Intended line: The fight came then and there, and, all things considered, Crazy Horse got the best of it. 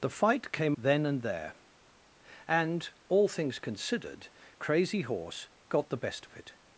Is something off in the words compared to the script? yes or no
no